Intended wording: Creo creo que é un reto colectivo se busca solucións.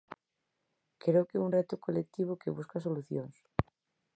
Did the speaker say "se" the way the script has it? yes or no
no